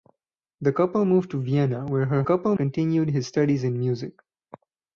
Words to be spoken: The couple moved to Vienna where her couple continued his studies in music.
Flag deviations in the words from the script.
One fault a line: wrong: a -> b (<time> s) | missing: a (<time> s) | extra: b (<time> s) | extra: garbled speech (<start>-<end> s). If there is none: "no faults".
no faults